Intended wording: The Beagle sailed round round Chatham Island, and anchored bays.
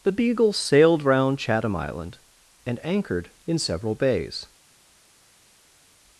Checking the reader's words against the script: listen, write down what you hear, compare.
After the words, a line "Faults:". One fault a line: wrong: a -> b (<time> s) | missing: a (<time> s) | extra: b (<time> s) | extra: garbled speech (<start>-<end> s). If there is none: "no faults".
The Beagle sailed round Chatham Island, and anchored in several bays.
Faults:
missing: round (1.4 s)
extra: in several (3.5 s)